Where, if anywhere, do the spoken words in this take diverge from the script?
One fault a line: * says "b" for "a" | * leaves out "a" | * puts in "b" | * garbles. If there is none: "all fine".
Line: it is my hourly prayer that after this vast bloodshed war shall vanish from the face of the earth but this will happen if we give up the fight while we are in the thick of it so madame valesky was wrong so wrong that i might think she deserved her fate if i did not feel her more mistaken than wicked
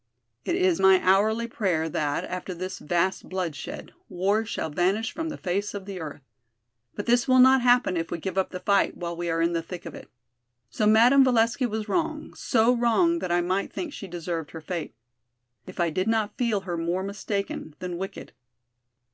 * puts in "not"